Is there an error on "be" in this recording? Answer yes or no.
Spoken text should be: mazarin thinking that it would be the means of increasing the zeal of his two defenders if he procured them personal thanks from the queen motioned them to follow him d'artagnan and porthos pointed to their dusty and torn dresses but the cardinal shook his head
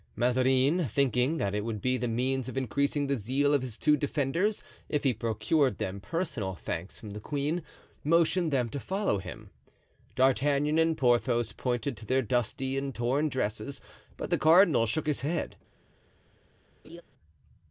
no